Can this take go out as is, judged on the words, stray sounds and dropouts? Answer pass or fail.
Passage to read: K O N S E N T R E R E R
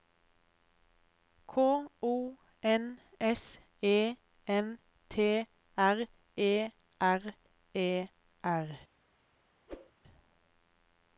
fail